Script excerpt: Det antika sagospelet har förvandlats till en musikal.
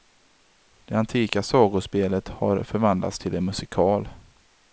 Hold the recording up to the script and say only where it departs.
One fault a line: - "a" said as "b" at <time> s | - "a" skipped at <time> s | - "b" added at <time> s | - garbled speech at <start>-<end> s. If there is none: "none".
none